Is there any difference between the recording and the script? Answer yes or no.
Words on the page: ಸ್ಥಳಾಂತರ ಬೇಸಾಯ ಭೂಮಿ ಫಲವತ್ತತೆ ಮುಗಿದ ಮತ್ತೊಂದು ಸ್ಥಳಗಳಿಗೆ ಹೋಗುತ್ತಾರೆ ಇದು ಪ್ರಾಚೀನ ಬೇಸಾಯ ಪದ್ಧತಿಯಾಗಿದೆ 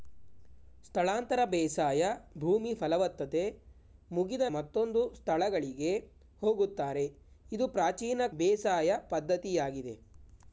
no